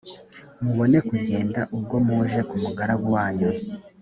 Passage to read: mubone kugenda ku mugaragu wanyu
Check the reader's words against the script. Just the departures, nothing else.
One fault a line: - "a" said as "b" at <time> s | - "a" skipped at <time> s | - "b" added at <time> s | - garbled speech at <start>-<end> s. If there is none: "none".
- "ubwo muje" added at 1.8 s